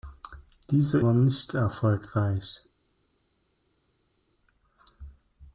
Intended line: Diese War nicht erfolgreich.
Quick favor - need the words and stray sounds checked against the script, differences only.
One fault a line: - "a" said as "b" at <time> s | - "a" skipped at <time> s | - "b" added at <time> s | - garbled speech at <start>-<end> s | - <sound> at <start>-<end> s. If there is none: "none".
none